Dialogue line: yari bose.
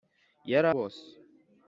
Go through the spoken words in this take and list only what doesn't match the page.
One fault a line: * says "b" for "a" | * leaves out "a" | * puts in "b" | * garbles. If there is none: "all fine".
all fine